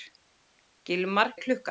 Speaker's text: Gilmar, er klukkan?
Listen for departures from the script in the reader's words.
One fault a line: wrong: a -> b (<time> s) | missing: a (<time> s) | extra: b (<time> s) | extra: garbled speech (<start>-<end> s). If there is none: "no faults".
no faults